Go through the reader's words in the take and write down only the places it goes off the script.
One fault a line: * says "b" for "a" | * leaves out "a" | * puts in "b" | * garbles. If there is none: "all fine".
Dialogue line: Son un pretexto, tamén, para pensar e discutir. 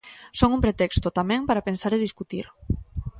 all fine